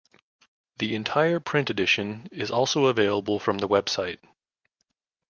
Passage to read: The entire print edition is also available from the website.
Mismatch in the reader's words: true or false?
false